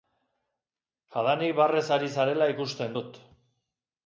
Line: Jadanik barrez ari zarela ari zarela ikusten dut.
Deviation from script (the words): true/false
true